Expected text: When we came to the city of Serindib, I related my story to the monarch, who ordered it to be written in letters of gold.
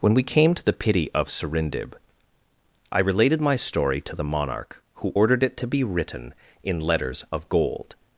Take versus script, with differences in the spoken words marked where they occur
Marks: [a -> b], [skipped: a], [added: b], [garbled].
When we came to the [city -> pity] of Serindib, I related my story to the monarch, who ordered it to be written in letters of gold.